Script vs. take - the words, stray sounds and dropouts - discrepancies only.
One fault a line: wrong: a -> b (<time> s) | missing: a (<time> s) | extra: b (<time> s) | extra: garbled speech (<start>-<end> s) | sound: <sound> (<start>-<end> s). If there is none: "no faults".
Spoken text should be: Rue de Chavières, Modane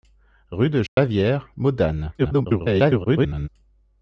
sound: dropout (0.9-1.0 s)
extra: garbled speech (2.2-3.5 s)